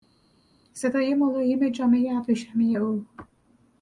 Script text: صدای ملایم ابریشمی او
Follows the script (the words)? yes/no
no